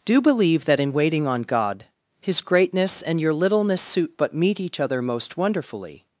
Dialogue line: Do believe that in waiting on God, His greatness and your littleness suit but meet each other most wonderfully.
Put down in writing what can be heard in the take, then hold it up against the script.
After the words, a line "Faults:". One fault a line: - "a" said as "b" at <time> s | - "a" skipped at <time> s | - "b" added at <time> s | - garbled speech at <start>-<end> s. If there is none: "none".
Do believe that in waiting on God, His greatness and your littleness suit but meet each other most wonderfully.
Faults:
none